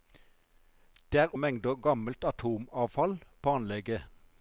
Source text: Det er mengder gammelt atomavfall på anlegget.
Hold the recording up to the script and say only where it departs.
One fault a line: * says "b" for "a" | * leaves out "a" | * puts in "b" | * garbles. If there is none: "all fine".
all fine